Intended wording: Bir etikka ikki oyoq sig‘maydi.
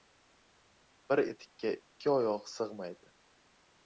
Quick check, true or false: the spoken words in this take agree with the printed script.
true